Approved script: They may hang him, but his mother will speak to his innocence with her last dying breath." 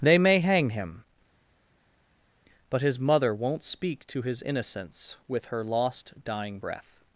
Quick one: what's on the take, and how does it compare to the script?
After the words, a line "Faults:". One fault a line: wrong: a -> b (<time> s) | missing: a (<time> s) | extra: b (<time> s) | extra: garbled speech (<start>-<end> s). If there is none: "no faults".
They may hang him, but his mother won't speak to his innocence with her lost dying breath."
Faults:
wrong: will -> won't (3.3 s)
wrong: last -> lost (5.6 s)